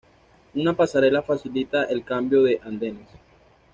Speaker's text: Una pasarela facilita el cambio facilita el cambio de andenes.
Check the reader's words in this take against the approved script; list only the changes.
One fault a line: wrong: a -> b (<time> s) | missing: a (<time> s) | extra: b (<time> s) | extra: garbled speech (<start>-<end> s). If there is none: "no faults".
missing: facilita el cambio (2.4 s)